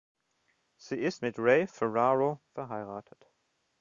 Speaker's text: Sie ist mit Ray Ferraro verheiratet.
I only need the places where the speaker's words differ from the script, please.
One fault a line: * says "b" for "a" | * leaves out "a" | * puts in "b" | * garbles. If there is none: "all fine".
all fine